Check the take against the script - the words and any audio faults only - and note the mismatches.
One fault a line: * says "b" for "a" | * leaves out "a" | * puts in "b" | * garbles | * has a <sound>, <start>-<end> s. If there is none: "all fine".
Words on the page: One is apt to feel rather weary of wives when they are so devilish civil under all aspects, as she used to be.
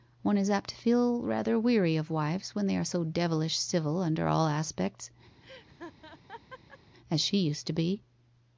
* has a laugh, 5.4-6.8 s